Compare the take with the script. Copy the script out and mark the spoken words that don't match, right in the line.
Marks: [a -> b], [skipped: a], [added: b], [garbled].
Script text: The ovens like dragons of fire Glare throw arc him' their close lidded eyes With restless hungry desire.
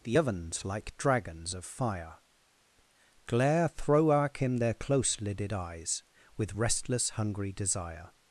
The ovens like dragons of fire Glare throw arc him' their close lidded eyes With restless hungry desire.